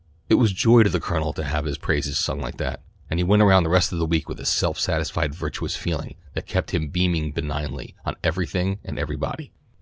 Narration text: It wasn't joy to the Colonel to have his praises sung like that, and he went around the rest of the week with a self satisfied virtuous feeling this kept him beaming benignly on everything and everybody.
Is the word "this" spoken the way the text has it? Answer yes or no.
no